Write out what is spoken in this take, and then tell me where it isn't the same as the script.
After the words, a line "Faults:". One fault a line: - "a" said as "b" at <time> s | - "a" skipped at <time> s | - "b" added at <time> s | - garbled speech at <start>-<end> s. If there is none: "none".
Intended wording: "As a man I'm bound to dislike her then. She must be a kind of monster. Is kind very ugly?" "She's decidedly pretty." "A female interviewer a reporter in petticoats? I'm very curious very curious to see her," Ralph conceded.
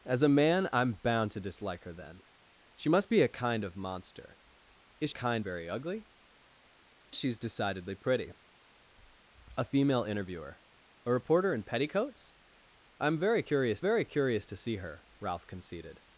"As a man I'm bound to dislike her then. She must be a kind of monster. Is kind very ugly?" "She's decidedly pretty." "A female interviewer a reporter in petticoats? I'm very curious very curious to see her," Ralph conceded.
Faults:
none